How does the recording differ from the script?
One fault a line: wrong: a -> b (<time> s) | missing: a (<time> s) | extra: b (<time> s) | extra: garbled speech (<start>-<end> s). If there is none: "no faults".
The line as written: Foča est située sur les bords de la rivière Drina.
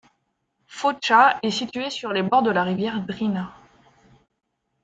no faults